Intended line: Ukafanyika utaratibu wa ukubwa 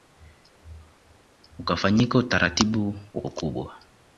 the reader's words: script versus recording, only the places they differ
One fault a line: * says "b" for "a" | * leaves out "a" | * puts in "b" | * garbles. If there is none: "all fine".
all fine